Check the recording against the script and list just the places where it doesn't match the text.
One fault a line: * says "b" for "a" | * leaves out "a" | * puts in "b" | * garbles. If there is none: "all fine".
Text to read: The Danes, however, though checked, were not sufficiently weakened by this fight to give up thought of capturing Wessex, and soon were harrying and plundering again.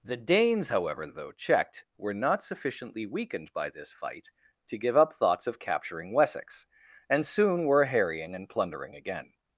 * says "thoughts" for "thought"